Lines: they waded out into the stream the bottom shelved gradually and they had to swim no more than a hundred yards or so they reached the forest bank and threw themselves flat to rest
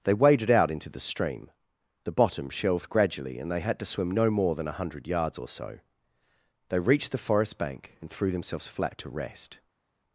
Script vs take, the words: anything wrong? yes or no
no